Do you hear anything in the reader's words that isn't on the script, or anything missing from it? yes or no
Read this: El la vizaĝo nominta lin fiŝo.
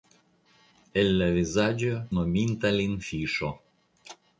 no